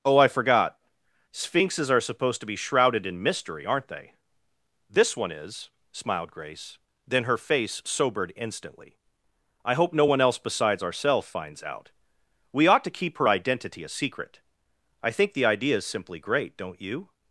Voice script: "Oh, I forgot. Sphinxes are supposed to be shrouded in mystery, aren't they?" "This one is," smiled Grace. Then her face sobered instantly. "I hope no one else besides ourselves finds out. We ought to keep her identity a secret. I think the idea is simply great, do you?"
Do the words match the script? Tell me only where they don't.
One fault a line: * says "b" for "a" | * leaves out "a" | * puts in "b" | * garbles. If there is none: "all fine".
* says "don't" for "do"